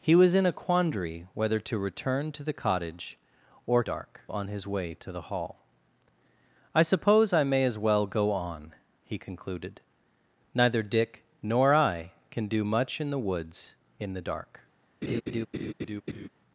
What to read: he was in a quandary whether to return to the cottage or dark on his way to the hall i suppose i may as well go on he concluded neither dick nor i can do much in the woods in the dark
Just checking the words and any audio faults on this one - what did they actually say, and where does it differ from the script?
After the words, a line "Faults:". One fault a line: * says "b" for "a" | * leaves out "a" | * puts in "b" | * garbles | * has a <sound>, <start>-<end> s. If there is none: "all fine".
he was in a quandary whether to return to the cottage or dark on his way to the hall i suppose i may as well go on he concluded neither dick nor i can do much in the woods in the dark
Faults:
* has a laugh, 15.0-16.3 s